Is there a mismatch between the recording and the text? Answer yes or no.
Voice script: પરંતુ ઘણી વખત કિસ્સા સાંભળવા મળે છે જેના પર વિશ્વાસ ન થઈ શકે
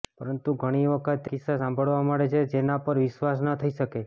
no